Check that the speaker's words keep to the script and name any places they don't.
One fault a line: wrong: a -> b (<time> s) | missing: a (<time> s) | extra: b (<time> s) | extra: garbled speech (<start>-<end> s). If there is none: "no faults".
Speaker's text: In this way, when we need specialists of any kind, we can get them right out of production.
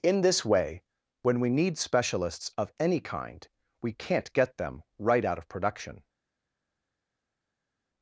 wrong: can -> can't (3.9 s)